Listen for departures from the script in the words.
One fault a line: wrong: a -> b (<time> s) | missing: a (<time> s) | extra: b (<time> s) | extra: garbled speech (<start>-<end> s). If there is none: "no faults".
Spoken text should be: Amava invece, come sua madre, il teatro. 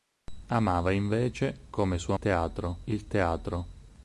wrong: madre -> teatro (2.2 s)